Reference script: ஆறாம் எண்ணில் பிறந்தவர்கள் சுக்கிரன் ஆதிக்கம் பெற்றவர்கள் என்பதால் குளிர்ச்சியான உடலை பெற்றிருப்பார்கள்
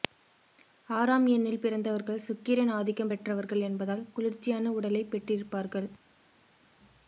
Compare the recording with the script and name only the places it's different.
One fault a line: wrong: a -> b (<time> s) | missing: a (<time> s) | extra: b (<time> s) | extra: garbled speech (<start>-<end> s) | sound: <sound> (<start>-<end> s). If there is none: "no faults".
no faults